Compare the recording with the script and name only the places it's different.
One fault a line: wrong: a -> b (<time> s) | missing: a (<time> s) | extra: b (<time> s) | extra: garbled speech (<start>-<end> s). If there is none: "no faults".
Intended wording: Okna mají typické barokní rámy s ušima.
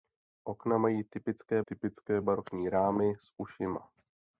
extra: typické (1.6 s)